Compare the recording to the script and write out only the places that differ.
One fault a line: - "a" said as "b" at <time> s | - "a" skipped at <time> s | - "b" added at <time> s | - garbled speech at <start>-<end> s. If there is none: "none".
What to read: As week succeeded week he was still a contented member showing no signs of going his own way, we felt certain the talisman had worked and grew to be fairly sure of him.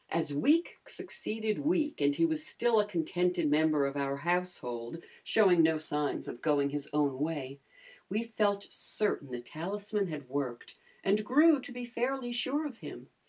- "and" added at 2.0 s
- "of our household" added at 3.8 s